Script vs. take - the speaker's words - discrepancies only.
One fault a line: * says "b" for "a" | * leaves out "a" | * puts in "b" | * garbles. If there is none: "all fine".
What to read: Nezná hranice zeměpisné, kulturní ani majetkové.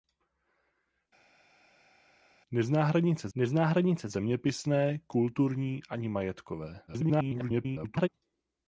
* puts in "nezná hranice"
* garbles